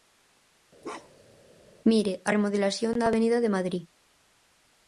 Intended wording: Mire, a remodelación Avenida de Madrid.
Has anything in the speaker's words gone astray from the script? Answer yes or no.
yes